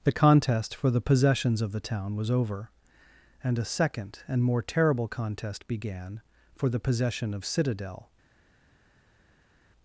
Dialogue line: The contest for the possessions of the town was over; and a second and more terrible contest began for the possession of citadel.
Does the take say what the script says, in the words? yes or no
yes